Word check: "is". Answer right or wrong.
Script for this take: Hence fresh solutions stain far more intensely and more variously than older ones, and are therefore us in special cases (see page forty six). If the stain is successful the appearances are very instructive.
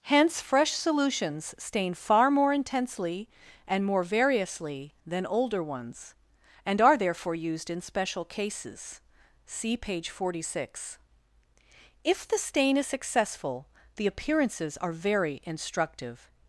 right